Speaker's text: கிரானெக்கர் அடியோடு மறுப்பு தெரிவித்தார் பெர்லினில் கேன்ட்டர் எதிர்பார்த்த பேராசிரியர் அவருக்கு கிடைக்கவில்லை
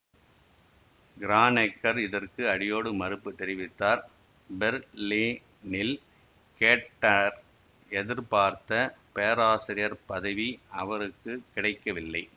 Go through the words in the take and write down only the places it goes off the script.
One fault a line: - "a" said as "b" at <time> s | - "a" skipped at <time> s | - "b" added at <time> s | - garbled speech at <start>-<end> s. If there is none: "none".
- "இதற்கு" added at 2.0 s
- "பதவி" added at 10.1 s